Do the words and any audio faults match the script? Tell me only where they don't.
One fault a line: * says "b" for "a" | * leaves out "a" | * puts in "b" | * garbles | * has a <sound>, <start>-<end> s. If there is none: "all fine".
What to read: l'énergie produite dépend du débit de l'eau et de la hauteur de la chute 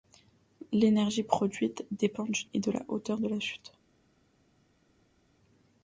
* leaves out "débit de l'eau"